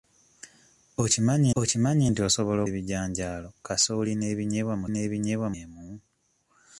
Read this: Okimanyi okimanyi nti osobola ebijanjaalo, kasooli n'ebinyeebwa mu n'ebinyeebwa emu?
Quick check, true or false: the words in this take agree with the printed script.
true